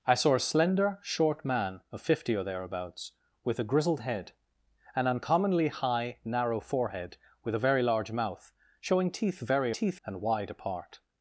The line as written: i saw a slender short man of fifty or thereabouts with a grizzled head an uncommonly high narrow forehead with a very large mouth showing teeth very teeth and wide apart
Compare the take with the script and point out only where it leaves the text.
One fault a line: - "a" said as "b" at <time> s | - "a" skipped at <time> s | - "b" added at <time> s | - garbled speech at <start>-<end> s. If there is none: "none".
none